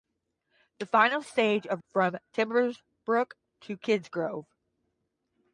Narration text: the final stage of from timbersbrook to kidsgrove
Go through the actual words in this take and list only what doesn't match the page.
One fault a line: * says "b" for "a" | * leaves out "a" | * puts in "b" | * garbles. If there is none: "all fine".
all fine